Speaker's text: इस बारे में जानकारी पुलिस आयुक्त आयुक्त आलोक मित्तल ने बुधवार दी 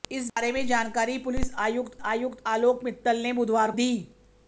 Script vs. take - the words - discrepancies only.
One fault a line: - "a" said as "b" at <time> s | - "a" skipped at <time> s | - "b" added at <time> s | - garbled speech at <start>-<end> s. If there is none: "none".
none